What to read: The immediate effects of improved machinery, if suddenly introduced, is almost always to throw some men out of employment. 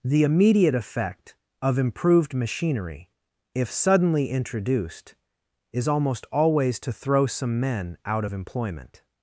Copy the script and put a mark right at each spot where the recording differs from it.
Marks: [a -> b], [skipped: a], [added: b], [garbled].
The immediate [effects -> effect] of improved machinery, if suddenly introduced, is almost always to throw some men out of employment.